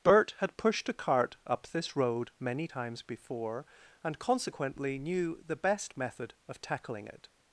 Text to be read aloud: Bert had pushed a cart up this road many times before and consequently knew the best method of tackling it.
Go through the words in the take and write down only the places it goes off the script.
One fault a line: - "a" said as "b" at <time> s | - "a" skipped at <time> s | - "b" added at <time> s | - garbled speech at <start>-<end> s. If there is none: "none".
none